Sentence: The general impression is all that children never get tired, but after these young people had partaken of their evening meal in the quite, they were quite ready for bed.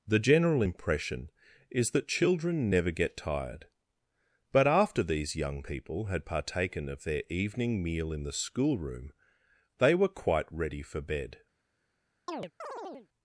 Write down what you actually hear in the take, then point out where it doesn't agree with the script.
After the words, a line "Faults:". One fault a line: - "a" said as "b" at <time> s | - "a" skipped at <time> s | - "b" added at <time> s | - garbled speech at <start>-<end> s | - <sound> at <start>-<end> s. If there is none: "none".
The general impression is that children never get tired, but after these young people had partaken of their evening meal in the schoolroom, they were quite ready for bed.
Faults:
- "all" skipped at 1.9 s
- "quite" said as "schoolroom" at 8.3 s
- chirp at 12.3-13.1 s